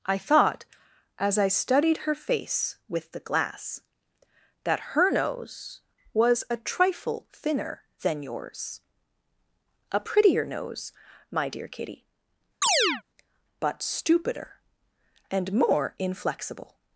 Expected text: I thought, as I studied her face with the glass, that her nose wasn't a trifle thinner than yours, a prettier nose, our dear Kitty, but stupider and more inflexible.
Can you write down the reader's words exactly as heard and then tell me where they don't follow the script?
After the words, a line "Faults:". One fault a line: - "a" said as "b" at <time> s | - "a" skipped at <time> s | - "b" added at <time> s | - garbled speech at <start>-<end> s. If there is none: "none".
I thought, as I studied her face with the glass, that her nose was a trifle thinner than yours, a prettier nose, my dear Kitty, but stupider and more inflexible.
Faults:
- "wasn't" said as "was" at 6.1 s
- "our" said as "my" at 11.3 s